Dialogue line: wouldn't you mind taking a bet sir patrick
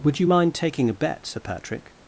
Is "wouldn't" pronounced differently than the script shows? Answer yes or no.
yes